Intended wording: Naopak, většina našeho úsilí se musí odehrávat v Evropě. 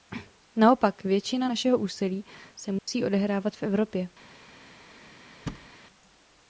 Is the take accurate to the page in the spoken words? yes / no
yes